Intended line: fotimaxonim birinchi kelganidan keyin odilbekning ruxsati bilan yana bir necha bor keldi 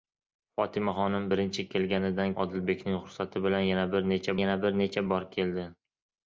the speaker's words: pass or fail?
fail